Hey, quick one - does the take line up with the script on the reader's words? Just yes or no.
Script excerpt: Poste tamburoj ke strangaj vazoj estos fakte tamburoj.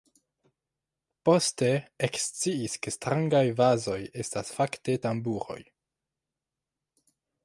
no